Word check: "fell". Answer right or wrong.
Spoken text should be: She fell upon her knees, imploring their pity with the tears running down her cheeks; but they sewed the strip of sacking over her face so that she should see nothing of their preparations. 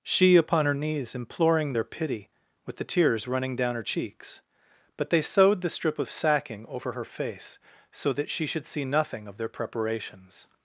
wrong